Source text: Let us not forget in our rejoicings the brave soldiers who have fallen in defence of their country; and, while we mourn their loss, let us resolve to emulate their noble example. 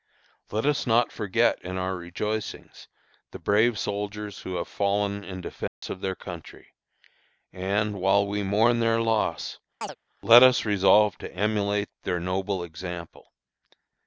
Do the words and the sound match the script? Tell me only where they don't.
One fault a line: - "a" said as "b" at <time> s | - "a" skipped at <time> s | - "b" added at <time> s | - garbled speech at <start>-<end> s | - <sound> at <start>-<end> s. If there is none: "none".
- dropout at 5.7-5.8 s
- chirp at 9.8-10.0 s